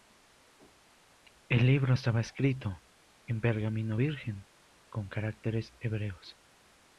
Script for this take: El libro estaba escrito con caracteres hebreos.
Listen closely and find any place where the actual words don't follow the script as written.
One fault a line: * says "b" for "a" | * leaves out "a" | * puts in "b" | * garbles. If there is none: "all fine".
* puts in "en pergamino virgen"